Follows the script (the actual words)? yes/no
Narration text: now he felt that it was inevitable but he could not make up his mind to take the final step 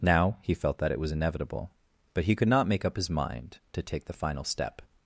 yes